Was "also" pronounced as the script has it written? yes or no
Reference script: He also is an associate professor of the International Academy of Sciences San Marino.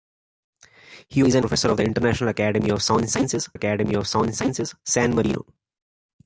no